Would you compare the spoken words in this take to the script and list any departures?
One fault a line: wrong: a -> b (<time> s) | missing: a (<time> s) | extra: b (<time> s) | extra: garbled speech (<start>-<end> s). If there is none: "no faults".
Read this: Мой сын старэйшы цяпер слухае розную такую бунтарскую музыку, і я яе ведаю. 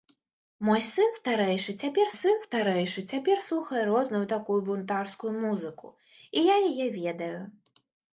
extra: сын старэйшы цяпер (2.2 s)